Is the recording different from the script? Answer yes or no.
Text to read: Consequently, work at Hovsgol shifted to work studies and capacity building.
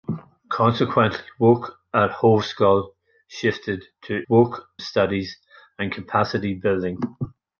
no